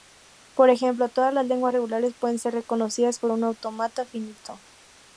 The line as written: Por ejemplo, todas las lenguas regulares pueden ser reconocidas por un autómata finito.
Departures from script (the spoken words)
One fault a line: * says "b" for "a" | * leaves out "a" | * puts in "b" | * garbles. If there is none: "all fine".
all fine